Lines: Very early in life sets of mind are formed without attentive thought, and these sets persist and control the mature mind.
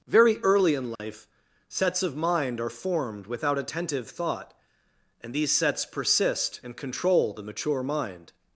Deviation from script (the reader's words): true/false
false